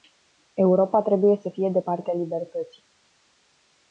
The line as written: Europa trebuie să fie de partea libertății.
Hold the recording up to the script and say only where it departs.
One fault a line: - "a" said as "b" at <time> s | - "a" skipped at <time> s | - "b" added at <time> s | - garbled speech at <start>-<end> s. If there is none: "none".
none